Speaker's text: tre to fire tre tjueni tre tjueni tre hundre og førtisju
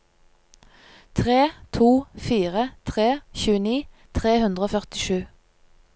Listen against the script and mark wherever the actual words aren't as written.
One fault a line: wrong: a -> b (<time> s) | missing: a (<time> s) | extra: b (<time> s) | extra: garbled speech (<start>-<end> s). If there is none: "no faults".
missing: tjueni tre (4.4 s)